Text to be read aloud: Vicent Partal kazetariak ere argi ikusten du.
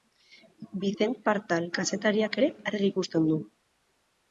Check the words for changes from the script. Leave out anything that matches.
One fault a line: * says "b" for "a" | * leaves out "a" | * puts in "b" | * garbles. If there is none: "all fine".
all fine